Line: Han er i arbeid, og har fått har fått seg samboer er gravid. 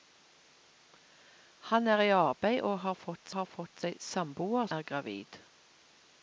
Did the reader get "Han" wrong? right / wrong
right